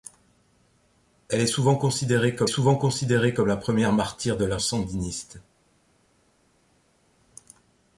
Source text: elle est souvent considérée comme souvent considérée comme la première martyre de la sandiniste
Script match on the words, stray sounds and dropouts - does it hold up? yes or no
yes